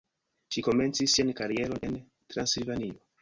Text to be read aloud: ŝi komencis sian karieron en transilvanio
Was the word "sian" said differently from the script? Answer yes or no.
no